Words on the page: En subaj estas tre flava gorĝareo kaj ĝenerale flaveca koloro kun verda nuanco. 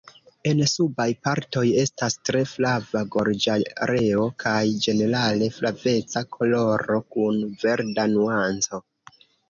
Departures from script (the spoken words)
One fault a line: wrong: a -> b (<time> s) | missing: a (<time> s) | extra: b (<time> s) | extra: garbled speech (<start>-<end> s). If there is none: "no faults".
extra: partoj (1.2 s)